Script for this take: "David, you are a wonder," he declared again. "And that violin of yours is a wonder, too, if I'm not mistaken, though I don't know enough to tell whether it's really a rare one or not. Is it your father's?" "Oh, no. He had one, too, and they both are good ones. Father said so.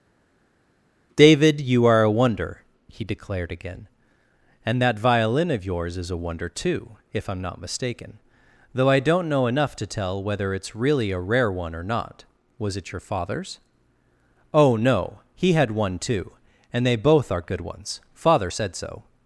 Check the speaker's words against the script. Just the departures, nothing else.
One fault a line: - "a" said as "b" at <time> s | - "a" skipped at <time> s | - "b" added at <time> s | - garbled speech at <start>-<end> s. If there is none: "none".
- "Is" said as "Was" at 12.6 s